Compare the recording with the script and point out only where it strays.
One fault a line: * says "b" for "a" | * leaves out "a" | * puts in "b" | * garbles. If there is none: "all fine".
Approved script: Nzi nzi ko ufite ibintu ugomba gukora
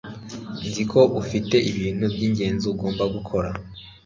* leaves out "nzi"
* puts in "byingenzi"